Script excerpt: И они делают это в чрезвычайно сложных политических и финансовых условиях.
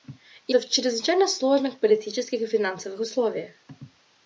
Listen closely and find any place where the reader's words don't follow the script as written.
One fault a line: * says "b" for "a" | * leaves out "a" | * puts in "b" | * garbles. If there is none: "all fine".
* leaves out "они делают"